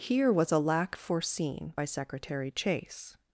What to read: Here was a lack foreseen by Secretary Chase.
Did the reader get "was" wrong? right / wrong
right